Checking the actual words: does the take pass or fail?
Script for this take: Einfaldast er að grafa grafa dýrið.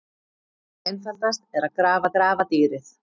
pass